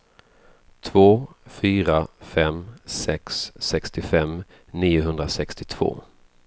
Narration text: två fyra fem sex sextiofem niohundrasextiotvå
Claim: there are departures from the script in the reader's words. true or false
false